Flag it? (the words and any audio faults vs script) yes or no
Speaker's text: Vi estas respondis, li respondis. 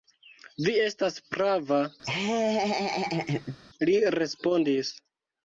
yes